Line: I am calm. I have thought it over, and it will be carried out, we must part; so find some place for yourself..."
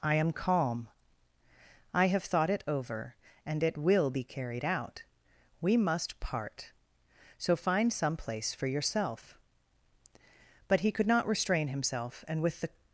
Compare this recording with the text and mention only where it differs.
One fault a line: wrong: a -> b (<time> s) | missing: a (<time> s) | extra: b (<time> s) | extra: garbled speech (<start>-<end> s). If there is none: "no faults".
extra: But he could not restrain himself and with the (10.7 s)